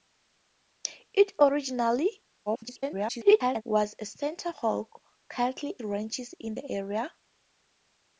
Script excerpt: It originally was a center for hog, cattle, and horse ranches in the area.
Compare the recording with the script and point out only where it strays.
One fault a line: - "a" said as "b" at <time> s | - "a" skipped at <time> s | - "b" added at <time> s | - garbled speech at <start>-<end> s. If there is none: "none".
- garbled speech at 2.5-3.6 s
- "for" skipped at 4.5 s
- "and horse" skipped at 5.7 s